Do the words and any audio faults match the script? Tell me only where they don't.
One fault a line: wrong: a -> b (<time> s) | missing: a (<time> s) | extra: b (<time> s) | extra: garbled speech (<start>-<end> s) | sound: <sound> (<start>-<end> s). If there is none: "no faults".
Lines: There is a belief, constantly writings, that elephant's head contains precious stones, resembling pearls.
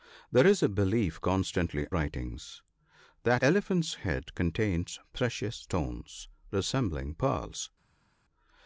no faults